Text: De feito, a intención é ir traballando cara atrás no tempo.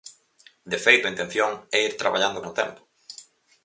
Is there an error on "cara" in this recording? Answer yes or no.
yes